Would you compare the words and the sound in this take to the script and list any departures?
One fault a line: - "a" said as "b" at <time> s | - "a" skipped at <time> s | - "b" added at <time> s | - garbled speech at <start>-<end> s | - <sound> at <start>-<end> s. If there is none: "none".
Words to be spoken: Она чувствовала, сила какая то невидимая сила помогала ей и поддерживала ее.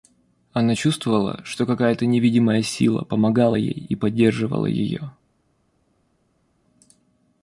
- "сила" said as "что" at 1.4 s